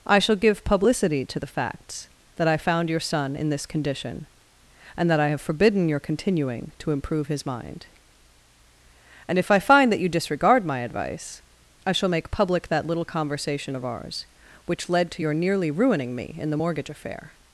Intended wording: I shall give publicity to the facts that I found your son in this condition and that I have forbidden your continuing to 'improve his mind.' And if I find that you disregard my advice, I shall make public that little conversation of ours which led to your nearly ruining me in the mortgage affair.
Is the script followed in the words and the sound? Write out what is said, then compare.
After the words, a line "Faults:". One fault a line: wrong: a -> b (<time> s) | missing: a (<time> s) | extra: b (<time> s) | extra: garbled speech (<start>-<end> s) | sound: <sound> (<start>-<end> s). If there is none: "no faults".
I shall give publicity to the facts that I found your son in this condition and that I have forbidden your continuing to 'improve his mind.' And if I find that you disregard my advice, I shall make public that little conversation of ours which led to your nearly ruining me in the mortgage affair.
Faults:
no faults